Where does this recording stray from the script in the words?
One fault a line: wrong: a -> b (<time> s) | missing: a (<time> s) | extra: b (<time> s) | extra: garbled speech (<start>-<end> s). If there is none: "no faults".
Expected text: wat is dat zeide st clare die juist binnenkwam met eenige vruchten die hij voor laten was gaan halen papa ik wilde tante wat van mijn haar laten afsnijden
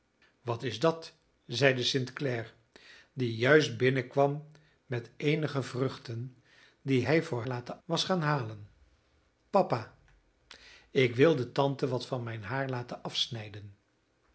no faults